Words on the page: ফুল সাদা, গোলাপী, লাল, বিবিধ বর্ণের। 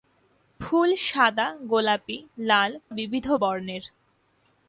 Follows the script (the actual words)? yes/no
yes